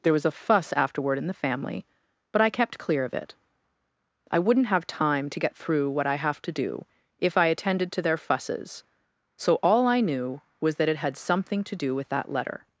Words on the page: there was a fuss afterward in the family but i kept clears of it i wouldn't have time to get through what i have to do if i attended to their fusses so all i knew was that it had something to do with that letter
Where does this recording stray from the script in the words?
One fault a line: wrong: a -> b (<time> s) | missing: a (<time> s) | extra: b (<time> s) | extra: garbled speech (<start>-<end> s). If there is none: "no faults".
wrong: clears -> clear (2.8 s)